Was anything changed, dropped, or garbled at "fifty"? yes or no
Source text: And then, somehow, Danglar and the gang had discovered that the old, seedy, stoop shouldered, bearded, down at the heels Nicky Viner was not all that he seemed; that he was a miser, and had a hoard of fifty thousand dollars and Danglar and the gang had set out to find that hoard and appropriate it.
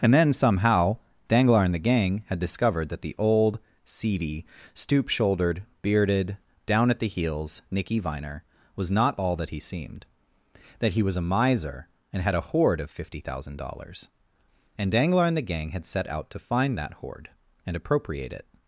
no